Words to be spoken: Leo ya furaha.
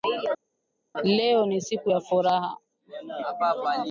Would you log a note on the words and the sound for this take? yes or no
yes